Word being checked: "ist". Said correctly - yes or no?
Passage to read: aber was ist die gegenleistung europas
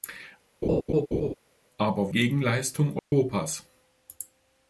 no